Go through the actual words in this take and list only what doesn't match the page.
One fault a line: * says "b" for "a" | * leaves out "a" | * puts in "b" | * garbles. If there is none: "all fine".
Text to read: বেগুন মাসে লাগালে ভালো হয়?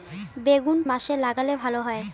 all fine